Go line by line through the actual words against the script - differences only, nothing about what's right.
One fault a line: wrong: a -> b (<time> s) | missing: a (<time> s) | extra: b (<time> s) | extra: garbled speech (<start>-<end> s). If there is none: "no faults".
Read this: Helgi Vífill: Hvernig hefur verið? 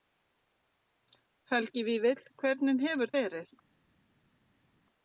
no faults